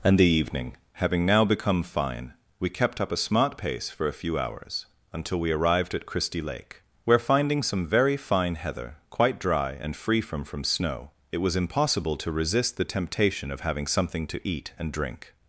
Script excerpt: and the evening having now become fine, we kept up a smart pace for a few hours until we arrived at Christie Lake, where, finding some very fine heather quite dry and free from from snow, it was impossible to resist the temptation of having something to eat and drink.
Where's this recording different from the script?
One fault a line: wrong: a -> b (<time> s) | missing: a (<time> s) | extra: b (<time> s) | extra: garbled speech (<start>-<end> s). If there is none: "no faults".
no faults